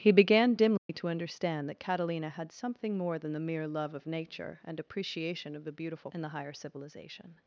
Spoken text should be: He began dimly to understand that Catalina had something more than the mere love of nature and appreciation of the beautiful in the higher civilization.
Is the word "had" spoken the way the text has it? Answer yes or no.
yes